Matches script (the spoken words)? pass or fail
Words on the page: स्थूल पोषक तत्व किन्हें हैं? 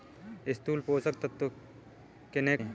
pass